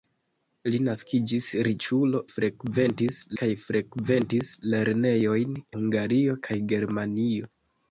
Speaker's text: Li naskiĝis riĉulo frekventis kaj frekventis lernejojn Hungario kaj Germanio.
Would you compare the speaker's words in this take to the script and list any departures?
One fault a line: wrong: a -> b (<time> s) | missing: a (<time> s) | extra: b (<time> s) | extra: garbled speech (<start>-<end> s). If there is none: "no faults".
no faults